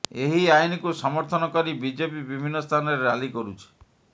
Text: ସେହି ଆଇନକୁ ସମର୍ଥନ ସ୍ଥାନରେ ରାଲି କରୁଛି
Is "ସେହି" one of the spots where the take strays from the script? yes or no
yes